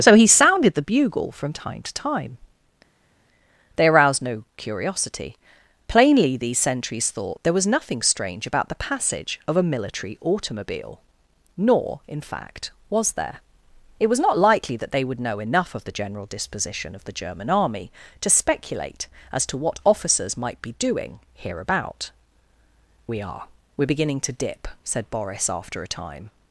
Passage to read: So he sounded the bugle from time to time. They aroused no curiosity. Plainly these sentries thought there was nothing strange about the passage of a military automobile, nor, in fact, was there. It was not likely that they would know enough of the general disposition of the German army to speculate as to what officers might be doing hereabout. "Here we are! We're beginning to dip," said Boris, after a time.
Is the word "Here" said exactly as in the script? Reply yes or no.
no